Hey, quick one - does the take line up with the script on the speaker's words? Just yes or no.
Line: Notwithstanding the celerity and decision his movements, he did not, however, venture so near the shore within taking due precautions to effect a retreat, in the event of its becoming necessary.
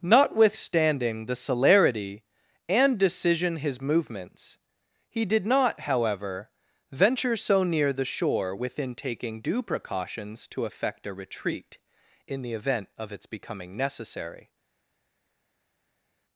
yes